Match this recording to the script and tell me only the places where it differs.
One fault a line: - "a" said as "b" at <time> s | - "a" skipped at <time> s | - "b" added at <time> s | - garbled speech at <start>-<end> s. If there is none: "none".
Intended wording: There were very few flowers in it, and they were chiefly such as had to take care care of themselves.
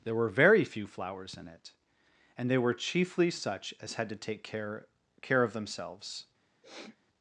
none